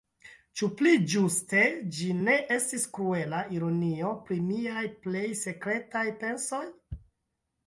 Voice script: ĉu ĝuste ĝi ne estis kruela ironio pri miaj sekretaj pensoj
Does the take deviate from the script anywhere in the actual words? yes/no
yes